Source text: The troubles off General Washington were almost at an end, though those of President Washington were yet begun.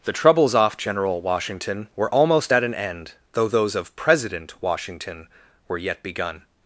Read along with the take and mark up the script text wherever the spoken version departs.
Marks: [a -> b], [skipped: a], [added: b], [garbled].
The troubles off General Washington were almost at an end, though those of President Washington were yet begun.